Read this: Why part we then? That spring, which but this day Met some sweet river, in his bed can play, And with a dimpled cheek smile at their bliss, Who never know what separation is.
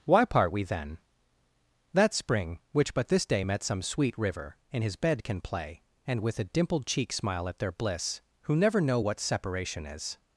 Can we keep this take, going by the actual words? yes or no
yes